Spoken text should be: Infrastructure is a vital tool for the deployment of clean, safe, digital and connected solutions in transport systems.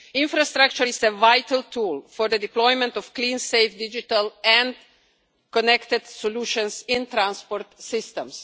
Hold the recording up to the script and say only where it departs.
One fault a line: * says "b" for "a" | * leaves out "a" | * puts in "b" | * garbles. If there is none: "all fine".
all fine